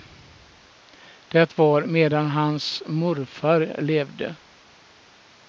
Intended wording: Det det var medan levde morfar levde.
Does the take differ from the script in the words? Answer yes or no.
yes